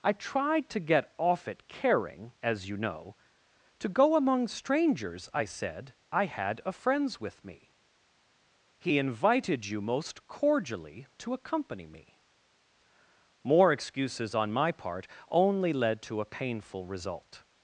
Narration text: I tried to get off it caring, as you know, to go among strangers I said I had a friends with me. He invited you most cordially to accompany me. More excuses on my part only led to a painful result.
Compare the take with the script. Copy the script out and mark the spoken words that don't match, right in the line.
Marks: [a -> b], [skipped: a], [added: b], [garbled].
I tried to get off it caring, as you know, to go among strangers I said I had a friends with me. He invited you most cordially to accompany me. More excuses on my part only led to a painful result.